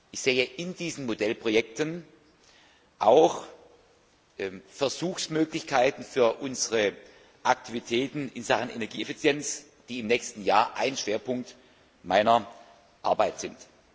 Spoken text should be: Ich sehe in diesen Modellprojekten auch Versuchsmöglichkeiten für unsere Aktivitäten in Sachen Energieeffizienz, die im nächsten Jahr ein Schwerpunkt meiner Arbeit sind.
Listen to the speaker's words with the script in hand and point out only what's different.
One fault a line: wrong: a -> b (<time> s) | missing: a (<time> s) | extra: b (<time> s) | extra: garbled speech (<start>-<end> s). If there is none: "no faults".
no faults